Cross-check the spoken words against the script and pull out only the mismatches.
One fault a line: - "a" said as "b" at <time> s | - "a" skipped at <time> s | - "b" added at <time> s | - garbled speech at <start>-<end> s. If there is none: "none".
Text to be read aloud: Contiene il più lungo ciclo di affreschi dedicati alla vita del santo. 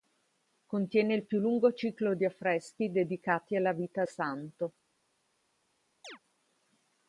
- "del" skipped at 4.0 s